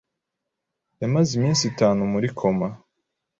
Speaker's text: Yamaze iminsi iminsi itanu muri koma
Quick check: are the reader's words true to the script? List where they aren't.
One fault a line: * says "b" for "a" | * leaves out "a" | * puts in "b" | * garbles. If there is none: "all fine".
* leaves out "iminsi"